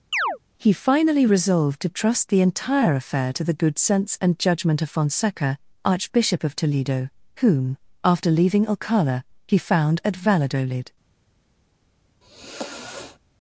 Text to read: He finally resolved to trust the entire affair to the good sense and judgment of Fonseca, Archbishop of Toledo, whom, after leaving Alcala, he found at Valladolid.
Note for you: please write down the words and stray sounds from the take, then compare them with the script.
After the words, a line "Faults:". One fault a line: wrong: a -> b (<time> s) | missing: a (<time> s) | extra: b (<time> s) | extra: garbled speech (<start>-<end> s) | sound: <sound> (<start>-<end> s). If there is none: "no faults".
He finally resolved to trust the entire affair to the good sense and judgment of Fonseca, Archbishop of Toledo, whom, after leaving Alcala, he found at Valladolid.
Faults:
sound: chirp (0.1-0.4 s)
sound: sigh (12.2-13.2 s)